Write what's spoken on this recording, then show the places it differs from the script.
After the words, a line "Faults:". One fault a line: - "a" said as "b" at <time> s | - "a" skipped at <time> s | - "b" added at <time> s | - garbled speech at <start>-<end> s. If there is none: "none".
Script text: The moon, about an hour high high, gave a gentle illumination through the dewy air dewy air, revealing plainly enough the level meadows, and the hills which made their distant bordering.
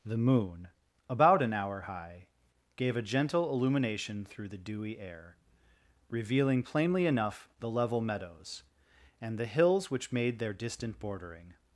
The moon, about an hour high, gave a gentle illumination through the dewy air, revealing plainly enough the level meadows, and the hills which made their distant bordering.
Faults:
- "high" skipped at 2.2 s
- "dewy air" skipped at 5.4 s